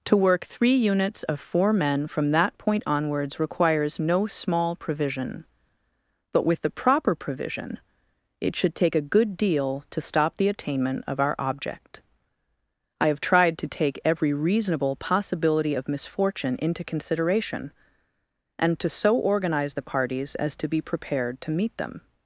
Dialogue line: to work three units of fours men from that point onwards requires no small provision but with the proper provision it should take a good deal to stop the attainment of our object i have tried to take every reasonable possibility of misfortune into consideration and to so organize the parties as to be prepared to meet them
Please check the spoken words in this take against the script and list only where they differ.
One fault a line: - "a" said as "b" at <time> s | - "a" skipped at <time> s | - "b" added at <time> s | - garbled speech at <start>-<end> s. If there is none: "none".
- "fours" said as "four" at 1.4 s